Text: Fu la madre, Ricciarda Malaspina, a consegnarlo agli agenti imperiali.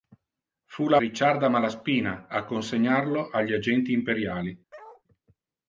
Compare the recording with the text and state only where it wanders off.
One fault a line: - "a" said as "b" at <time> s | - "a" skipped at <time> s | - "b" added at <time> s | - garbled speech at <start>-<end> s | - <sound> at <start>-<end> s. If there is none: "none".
- "madre" skipped at 1.0 s
- bark at 4.7-5.0 s